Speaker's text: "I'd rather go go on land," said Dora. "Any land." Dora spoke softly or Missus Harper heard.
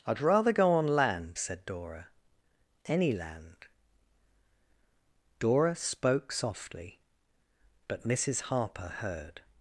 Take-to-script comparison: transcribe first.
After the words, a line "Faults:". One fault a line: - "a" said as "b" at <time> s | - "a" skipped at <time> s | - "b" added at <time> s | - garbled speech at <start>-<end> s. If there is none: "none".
"I'd rather go on land," said Dora. "Any land." Dora spoke softly but Missus Harper heard.
Faults:
- "go" skipped at 0.7 s
- "or" said as "but" at 7.9 s